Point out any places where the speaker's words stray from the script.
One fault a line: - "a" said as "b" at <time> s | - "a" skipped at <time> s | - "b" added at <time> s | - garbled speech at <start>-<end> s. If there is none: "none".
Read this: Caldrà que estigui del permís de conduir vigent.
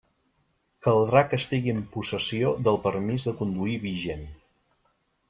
- "en possessió" added at 1.7 s